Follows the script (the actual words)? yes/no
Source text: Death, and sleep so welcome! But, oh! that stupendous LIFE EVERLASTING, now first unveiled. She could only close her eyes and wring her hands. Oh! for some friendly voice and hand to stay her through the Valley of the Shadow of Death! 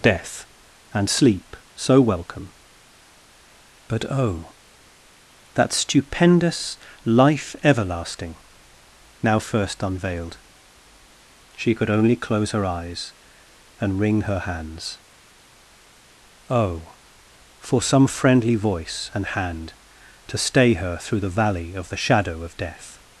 yes